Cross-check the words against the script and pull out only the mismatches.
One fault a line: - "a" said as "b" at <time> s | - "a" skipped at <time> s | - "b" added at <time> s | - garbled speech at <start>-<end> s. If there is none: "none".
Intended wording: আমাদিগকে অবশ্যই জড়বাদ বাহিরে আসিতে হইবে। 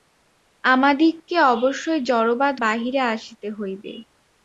none